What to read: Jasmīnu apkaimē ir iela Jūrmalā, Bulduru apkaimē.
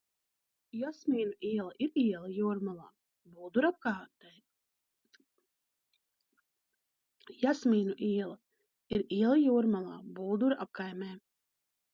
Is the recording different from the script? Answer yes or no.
yes